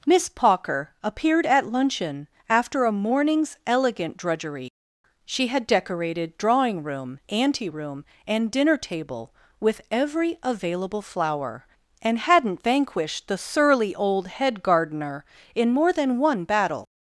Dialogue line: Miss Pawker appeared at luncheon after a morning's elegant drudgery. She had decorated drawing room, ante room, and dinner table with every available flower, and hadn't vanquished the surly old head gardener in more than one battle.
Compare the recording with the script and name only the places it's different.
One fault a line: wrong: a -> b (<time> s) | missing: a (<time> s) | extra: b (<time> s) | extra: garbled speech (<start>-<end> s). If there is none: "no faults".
no faults